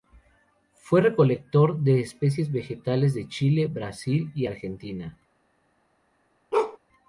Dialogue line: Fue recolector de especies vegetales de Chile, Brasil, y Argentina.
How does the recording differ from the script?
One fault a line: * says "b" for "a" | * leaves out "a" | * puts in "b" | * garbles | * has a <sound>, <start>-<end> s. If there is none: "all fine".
* has a bark, 6.5-6.8 s